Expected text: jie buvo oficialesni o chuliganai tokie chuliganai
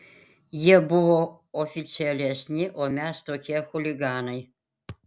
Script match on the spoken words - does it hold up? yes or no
no